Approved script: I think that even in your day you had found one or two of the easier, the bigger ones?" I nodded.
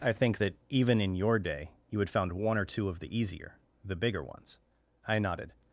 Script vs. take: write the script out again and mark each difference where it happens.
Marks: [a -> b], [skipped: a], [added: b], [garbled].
I think that even in your day you had found one or two of the easier, the bigger ones?" I nodded.